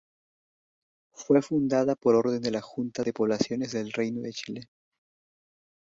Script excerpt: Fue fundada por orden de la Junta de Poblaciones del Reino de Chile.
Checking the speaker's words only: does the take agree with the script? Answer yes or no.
yes